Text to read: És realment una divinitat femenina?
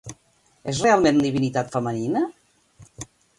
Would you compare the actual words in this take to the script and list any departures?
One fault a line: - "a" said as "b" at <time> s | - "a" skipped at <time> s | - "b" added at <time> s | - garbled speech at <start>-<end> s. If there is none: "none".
- "una" skipped at 1.2 s